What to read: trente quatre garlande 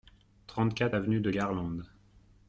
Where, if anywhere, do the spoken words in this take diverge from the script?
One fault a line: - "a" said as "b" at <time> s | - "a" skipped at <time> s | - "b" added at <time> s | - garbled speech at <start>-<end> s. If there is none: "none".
- "avenue de" added at 0.9 s